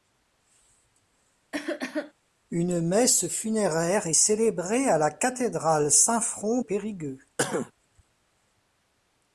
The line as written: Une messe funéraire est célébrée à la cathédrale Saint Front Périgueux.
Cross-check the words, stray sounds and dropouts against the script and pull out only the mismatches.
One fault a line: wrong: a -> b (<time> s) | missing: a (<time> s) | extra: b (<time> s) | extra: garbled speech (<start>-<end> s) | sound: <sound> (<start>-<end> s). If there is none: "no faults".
sound: cough (1.5-2.1 s)
sound: cough (7.4-7.7 s)